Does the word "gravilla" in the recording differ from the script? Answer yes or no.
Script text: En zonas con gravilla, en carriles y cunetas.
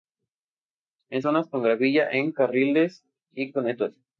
no